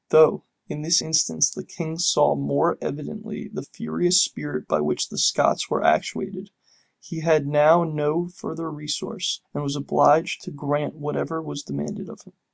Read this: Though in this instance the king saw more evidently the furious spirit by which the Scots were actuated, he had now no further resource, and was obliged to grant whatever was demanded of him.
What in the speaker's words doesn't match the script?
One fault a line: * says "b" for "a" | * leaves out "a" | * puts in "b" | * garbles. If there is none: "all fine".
all fine